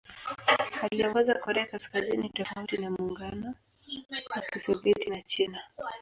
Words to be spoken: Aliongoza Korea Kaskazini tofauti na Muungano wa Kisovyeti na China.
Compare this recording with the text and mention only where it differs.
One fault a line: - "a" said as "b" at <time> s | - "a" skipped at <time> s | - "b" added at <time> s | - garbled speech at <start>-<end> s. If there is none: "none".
none